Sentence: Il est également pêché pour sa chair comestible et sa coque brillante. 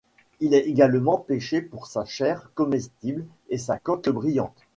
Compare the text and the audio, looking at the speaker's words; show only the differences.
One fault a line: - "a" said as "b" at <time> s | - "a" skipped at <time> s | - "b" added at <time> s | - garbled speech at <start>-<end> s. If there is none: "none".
none